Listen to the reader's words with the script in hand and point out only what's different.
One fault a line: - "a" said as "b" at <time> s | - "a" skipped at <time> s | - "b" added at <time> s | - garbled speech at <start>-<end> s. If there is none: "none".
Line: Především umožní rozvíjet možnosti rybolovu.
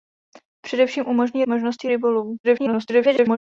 - "rozvíjet" skipped at 1.4 s
- garbled speech at 2.4-3.4 s